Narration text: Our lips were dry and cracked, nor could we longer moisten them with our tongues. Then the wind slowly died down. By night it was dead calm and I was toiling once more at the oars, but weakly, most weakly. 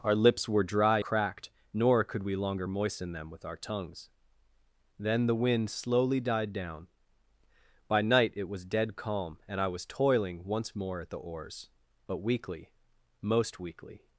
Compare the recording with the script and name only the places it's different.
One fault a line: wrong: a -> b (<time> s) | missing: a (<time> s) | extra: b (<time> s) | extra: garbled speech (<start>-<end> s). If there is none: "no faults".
missing: and (1.0 s)